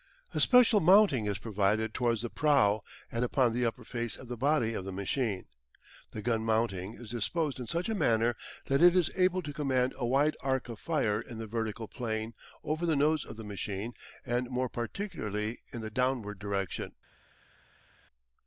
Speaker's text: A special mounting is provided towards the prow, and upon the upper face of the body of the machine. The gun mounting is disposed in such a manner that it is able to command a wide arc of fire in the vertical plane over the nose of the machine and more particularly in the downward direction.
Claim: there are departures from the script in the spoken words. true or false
false